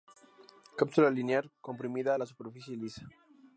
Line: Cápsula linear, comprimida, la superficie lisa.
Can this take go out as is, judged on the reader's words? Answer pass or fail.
pass